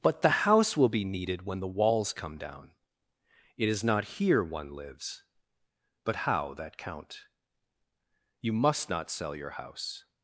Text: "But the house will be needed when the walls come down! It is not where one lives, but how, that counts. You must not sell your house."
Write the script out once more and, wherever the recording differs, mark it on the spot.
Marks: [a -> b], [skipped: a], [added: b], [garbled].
"But the house will be needed when the walls come down! It is not [where -> here] one lives, but how, that [counts. -> count] You must not sell your house."